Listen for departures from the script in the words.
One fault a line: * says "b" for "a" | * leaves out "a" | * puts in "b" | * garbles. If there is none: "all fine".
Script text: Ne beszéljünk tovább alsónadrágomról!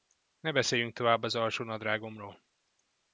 * puts in "az"